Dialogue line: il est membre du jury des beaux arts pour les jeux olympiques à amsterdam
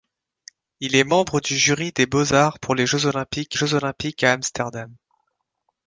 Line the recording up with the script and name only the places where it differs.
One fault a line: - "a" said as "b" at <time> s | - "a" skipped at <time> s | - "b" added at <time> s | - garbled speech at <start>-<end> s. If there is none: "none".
- "jeux olympiques" added at 3.6 s